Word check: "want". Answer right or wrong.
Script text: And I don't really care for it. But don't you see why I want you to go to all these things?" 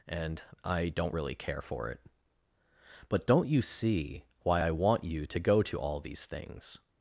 right